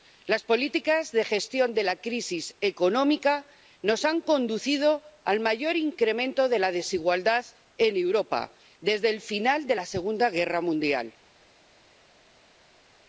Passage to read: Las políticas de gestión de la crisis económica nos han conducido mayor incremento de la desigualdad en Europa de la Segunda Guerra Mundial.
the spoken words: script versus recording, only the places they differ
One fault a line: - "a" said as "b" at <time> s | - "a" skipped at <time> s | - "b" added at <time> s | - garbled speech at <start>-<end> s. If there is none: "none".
- "al" added at 5.2 s
- "desde el final" added at 8.8 s